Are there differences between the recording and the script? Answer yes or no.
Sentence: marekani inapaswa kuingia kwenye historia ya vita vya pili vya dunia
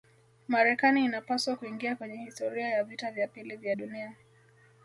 no